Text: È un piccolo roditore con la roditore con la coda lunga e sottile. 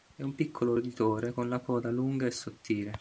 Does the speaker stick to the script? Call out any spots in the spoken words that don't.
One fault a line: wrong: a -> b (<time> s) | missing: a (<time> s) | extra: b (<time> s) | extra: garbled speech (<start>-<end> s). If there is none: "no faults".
missing: roditore con la (1.6 s)